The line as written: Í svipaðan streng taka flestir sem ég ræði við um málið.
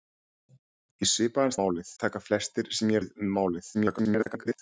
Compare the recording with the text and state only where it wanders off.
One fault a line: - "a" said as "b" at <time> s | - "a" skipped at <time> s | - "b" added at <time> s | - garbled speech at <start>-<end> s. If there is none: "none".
- "streng" said as "málið" at 1.6 s
- "ræði" skipped at 3.0 s
- garbled speech at 3.7-4.6 s